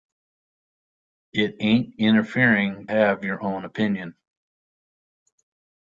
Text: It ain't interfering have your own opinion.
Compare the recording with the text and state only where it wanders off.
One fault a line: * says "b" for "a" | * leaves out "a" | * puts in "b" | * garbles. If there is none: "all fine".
all fine